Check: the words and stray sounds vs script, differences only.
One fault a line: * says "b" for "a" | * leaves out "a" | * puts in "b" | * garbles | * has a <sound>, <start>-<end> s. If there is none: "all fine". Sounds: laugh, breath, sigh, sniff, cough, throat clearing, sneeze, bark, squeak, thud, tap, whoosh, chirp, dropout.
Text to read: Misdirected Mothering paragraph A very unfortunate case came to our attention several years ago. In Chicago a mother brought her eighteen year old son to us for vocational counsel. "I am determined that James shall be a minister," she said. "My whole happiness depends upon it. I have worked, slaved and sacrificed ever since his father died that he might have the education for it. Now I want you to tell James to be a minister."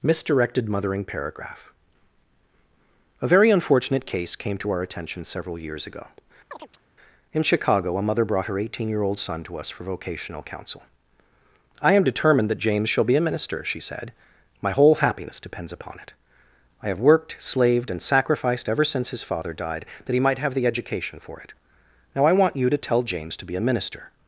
* has a chirp, 6.5-6.9 s